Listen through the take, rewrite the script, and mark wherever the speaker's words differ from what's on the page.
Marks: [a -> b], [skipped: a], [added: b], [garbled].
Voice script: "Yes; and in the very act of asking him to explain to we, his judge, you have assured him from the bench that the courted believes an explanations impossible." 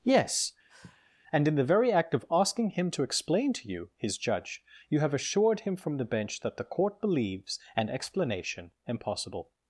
"Yes; and in the very act of asking him to explain to [we, -> you] his judge, you have assured him from the bench that the [courted -> court] believes an [explanations -> explanation] impossible."